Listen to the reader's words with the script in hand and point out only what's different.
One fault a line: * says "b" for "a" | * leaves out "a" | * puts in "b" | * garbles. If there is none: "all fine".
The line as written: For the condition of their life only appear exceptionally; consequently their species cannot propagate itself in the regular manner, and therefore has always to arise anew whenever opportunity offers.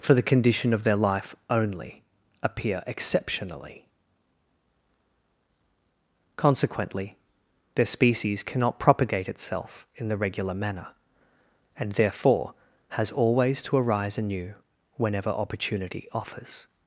all fine